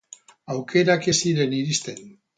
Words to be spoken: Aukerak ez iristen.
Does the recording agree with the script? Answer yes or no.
no